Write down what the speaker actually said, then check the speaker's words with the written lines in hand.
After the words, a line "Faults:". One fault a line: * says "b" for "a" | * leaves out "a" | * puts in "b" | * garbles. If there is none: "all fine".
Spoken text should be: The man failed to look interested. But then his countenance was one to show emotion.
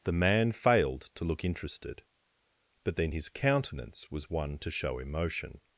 The man failed to look interested. But then his countenance was one to show emotion.
Faults:
all fine